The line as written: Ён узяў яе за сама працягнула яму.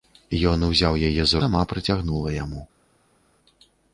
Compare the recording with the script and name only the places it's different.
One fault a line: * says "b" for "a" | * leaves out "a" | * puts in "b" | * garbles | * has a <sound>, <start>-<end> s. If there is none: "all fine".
all fine